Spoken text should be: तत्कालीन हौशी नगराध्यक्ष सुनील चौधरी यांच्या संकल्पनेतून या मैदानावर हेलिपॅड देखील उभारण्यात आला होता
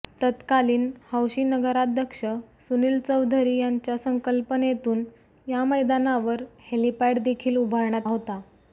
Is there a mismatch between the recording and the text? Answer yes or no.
yes